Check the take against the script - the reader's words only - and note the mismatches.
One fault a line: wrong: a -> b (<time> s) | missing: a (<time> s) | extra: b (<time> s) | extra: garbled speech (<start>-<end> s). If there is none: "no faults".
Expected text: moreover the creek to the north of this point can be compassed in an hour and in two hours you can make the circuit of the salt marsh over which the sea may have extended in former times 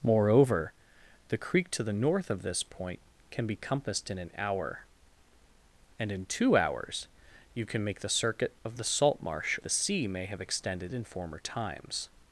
missing: over which (9.6 s)